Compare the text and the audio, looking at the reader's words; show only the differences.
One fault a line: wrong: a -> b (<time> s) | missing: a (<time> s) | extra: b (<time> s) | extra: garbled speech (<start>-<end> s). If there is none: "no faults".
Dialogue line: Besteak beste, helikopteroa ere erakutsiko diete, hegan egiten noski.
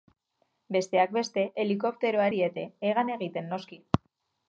missing: ere erakutsiko (2.2 s)